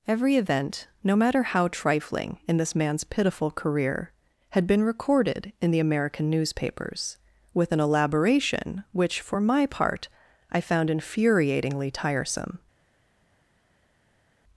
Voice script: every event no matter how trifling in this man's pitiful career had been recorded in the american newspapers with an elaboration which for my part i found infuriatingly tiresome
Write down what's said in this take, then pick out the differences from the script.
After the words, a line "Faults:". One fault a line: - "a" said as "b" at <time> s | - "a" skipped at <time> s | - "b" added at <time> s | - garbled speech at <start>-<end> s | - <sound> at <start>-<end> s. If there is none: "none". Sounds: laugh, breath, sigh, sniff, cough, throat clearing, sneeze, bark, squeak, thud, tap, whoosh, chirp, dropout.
every event no matter how trifling in this man's pitiful career had been recorded in the american newspapers with an elaboration which for my part i found infuriatingly tiresome
Faults:
none